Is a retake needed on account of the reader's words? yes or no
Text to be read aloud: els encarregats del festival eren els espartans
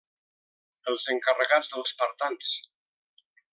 yes